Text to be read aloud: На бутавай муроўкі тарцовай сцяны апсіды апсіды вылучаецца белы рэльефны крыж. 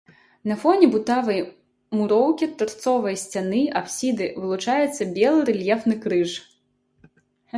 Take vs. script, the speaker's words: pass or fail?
fail